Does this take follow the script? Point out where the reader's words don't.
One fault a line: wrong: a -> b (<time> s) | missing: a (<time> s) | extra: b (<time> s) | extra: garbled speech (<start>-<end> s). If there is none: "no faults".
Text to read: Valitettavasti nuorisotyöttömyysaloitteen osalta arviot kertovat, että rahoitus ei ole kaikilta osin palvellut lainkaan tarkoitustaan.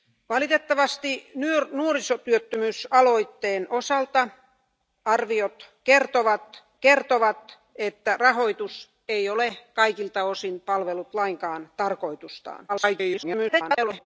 extra: kertovat (6.8 s)
extra: garbled speech (12.7-14.1 s)